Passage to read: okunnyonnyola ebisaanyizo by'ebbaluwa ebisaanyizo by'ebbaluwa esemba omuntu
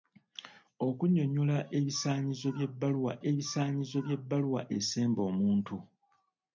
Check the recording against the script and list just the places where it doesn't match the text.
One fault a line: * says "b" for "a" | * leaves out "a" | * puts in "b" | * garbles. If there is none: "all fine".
all fine